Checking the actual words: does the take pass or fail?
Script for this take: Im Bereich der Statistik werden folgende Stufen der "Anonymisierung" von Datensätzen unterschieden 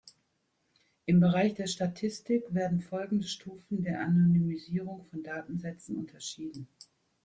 pass